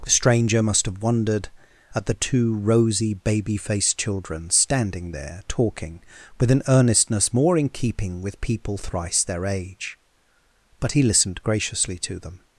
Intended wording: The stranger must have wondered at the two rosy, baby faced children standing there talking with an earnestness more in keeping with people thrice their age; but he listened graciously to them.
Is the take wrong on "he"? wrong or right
right